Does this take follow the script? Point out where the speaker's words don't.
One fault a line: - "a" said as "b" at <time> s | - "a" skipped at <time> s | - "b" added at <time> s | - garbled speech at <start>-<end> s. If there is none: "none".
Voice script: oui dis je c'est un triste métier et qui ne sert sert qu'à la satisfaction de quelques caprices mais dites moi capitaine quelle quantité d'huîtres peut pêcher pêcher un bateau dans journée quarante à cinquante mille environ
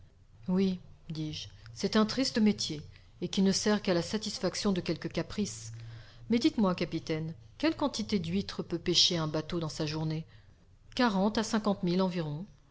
- "sert" skipped at 3.8 s
- "pêcher" skipped at 9.2 s
- "sa" added at 9.7 s